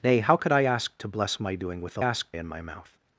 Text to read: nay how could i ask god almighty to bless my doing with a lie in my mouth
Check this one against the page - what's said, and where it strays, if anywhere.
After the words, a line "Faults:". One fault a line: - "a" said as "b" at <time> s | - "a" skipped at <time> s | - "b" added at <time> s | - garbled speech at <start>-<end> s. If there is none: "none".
nay how could i ask to bless my doing with a ask in my mouth
Faults:
- "god almighty" skipped at 1.0 s
- "lie" said as "ask" at 2.0 s